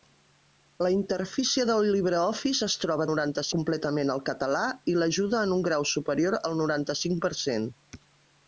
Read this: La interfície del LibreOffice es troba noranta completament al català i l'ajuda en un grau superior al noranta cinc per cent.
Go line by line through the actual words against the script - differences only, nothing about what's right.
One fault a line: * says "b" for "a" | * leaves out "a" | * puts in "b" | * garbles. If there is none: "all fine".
all fine